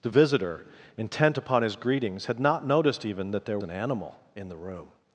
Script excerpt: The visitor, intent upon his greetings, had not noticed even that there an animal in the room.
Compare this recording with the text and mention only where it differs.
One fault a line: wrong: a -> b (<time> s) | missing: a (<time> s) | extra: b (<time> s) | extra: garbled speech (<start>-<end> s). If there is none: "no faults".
no faults